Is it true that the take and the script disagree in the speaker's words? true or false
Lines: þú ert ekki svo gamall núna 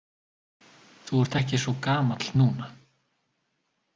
false